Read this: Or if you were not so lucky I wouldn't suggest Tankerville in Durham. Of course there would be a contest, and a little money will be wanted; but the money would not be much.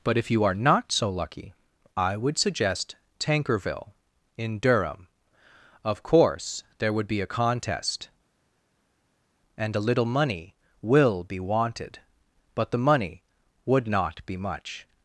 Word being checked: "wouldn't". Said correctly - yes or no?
no